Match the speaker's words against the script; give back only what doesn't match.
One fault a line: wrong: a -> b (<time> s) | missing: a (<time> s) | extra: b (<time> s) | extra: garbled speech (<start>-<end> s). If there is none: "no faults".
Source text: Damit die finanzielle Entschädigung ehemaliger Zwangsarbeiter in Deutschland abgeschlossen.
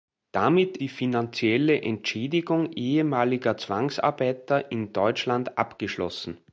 no faults